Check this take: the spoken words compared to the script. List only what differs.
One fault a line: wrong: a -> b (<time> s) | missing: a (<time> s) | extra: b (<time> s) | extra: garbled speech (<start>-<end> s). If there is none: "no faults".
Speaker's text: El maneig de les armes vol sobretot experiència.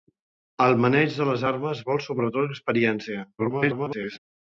extra: garbled speech (3.4-4.2 s)